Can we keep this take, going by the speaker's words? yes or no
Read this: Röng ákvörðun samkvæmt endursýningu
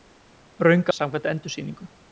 no